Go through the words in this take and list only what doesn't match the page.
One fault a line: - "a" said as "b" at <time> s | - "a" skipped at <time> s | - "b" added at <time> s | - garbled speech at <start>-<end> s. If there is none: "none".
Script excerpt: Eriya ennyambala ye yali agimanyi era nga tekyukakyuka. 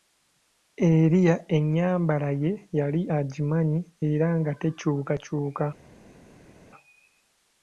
none